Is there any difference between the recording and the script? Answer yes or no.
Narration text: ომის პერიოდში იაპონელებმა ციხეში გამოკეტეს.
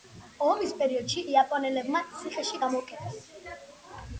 no